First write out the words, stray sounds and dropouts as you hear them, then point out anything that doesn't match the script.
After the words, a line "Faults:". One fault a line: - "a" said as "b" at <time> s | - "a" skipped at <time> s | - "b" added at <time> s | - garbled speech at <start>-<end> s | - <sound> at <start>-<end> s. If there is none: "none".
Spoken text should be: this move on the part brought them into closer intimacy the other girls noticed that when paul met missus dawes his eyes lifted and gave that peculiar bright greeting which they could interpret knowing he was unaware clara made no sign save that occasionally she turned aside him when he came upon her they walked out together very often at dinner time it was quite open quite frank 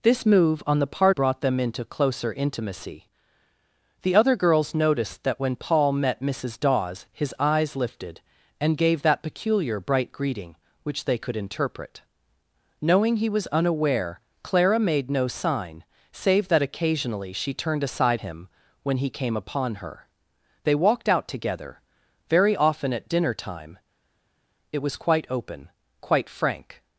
this move on the part brought them into closer intimacy the other girls noticed that when paul met missus dawes his eyes lifted and gave that peculiar bright greeting which they could interpret knowing he was unaware clara made no sign save that occasionally she turned aside him when he came upon her they walked out together very often at dinner time it was quite open quite frank
Faults:
none